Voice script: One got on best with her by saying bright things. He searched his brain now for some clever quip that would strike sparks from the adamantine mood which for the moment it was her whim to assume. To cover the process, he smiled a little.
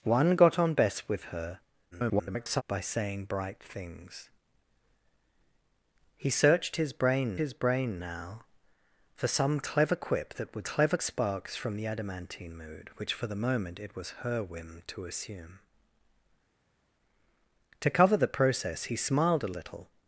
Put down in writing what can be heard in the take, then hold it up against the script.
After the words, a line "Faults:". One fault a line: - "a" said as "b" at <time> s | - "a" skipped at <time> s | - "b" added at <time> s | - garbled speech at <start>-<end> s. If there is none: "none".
One got on best with her [garbled] by saying bright things. He searched his brain his brain now for some clever quip that would clever sparks from the adamantine mood which for the moment it was her whim to assume. To cover the process, he smiled a little.
Faults:
- garbled speech at 1.9-2.6 s
- "his brain" added at 7.4 s
- "strike" said as "clever" at 10.6 s